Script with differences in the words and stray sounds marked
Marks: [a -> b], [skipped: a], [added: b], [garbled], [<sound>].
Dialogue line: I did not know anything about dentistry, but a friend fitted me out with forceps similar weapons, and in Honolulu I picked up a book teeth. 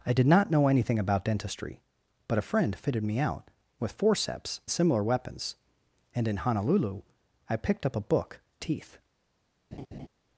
I did not know anything about dentistry, but a friend fitted me out with forceps similar weapons, and in Honolulu I picked up a book teeth. [laugh]